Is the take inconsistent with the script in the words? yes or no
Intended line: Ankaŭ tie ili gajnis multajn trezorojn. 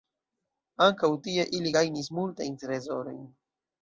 no